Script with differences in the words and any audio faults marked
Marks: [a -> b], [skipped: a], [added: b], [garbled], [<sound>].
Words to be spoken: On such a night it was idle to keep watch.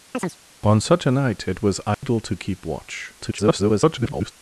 [chirp] On such a night it was idle [dropout] to keep watch. [garbled]